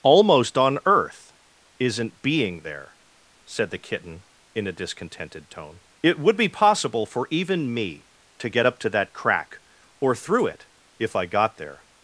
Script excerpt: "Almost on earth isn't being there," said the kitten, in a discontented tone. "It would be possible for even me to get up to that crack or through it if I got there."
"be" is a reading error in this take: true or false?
false